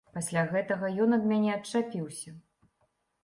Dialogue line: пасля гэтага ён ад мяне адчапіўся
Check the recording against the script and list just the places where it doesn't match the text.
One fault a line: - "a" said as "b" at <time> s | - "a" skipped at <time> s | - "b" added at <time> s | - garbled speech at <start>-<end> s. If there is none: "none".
none